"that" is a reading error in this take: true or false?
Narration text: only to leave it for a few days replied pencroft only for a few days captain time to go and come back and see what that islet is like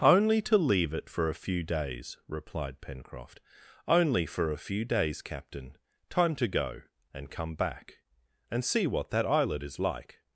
false